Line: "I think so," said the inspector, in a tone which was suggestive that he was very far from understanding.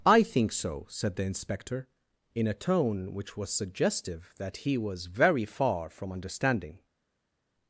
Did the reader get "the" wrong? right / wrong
right